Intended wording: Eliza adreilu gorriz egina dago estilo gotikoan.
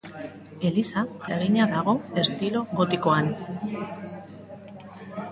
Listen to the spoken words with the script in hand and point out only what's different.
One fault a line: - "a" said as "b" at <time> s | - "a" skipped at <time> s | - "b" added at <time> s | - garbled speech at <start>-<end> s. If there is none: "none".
- "adreilu gorriz" skipped at 1.0 s